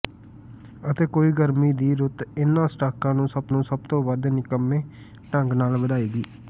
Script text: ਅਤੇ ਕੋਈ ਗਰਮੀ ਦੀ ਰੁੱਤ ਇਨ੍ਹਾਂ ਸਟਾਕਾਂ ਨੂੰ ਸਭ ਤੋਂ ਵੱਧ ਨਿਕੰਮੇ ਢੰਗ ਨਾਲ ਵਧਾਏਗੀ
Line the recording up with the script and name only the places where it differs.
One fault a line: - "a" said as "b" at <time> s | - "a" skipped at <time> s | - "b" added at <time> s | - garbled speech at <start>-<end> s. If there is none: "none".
- "ਨੂੰ ਸਭ" added at 3.5 s